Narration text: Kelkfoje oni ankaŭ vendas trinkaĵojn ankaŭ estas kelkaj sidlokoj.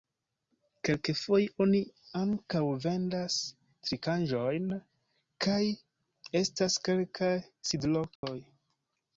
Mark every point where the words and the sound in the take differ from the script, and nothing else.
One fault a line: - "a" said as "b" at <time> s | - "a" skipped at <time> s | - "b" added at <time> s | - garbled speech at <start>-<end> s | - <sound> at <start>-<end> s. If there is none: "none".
- "ankaŭ" said as "kaj" at 5.5 s
- dropout at 8.2-8.2 s